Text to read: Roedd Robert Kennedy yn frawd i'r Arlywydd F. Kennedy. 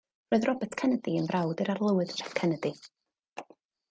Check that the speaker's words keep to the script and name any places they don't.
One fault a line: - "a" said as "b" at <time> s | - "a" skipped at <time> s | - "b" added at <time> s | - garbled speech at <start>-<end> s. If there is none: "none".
none